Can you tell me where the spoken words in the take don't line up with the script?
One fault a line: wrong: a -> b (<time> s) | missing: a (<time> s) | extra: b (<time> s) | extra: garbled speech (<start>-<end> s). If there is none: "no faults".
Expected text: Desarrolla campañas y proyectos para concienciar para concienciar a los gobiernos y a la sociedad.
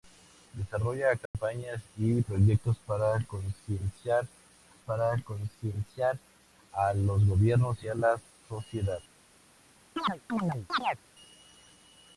no faults